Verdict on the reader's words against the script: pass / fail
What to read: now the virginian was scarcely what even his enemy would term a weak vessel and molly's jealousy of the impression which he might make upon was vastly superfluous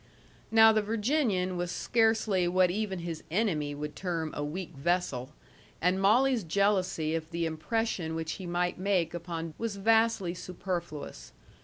pass